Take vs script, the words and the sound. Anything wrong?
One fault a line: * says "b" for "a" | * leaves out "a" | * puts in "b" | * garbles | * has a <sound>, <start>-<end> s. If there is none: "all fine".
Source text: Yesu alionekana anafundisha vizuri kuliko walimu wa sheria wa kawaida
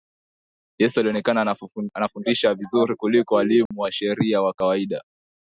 * has a dropout, 3.7-3.7 s